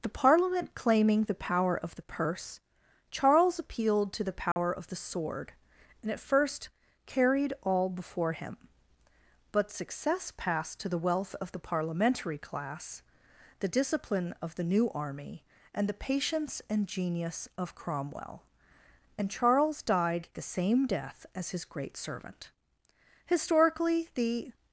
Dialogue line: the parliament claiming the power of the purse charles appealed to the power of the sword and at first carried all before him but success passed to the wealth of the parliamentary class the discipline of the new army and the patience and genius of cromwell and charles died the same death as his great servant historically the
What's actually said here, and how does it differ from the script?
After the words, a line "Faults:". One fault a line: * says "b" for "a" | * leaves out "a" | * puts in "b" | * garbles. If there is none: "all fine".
the parliament claiming the power of the purse charles appealed to the power of the sword and at first carried all before him but success passed to the wealth of the parliamentary class the discipline of the new army and the patience and genius of cromwell and charles died the same death as his great servant historically the
Faults:
all fine